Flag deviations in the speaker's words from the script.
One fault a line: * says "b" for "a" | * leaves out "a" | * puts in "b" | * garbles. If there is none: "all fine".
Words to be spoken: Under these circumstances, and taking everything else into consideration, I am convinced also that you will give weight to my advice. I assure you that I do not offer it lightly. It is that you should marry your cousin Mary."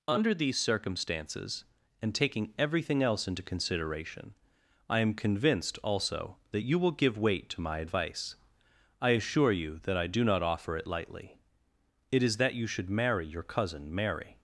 all fine